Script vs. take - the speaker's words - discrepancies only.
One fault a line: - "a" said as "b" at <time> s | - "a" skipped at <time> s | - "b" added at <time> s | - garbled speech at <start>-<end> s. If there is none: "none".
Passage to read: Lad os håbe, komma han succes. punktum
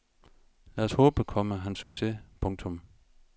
none